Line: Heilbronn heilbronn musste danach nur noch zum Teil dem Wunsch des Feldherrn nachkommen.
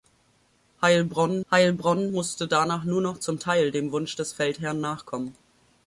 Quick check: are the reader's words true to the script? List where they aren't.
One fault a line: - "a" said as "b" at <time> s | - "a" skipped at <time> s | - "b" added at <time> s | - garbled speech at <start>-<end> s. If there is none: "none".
none